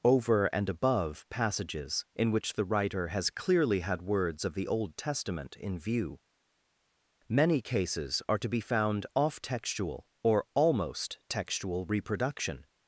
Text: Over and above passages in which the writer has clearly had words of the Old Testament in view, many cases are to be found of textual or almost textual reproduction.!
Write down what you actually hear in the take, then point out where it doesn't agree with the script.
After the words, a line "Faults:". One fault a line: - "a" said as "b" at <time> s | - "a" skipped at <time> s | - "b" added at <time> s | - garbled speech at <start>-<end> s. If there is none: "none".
Over and above passages in which the writer has clearly had words of the Old Testament in view, many cases are to be found off textual or almost textual reproduction.!
Faults:
- "of" said as "off" at 9.1 s